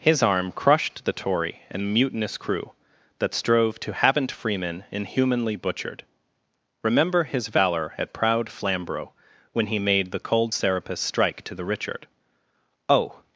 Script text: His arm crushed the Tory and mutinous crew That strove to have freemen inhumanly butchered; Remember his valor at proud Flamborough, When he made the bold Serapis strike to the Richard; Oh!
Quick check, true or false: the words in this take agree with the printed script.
false